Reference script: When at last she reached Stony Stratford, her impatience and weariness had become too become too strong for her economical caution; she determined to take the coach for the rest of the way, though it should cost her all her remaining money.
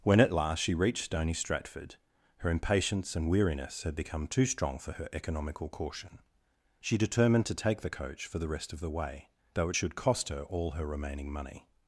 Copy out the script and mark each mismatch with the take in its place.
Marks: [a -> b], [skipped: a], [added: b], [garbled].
When at last she reached Stony Stratford, her impatience and weariness had become too [skipped: become too] strong for her economical caution; she determined to take the coach for the rest of the way, though it should cost her all her remaining money.